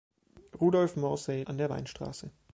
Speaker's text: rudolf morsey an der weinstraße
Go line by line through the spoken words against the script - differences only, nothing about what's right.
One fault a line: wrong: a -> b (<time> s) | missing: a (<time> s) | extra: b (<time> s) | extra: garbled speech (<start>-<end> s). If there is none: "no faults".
no faults